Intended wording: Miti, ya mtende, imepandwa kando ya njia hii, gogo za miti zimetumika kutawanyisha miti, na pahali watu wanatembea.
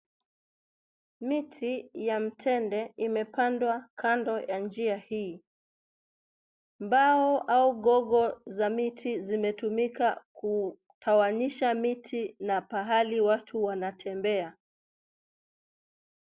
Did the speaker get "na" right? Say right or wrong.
right